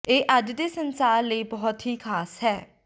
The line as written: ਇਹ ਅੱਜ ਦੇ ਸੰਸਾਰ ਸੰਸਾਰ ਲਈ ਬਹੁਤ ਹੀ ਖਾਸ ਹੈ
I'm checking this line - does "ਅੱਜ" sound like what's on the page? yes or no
yes